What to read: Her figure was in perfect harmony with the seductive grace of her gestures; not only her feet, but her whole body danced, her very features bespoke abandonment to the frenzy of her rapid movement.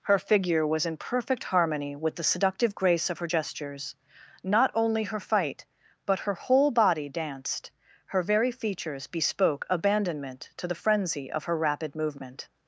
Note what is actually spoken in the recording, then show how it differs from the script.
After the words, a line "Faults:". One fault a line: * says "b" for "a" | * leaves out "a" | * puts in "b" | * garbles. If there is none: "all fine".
Her figure was in perfect harmony with the seductive grace of her gestures; not only her fight, but her whole body danced, her very features bespoke abandonment to the frenzy of her rapid movement.
Faults:
* says "fight" for "feet"